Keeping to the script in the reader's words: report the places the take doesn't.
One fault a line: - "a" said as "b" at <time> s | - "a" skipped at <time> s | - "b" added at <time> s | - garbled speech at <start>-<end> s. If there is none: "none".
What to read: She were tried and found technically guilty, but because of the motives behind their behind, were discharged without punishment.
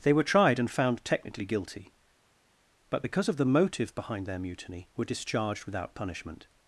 - "She" said as "They" at 0.0 s
- "motives" said as "motive" at 3.5 s
- "behind" said as "mutiny" at 4.4 s